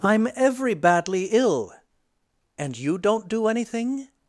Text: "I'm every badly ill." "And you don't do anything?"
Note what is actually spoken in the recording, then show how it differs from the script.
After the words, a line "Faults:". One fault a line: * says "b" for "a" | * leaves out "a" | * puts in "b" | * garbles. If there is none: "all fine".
"I'm every badly ill." "And you don't do anything?"
Faults:
all fine